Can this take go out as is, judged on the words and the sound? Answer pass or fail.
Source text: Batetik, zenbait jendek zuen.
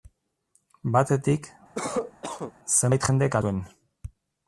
fail